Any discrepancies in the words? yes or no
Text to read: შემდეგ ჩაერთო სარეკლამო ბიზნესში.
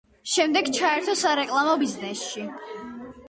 no